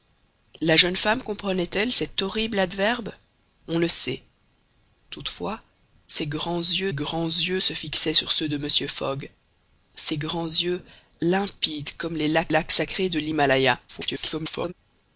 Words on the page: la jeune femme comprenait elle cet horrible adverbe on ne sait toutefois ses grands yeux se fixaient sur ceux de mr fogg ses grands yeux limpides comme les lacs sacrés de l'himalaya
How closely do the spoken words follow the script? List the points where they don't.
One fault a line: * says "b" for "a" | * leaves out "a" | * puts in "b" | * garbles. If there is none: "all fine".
* puts in "grands yeux"
* puts in "lacs"
* garbles